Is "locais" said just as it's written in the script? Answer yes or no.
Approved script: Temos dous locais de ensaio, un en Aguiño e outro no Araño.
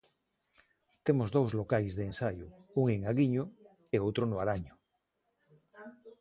yes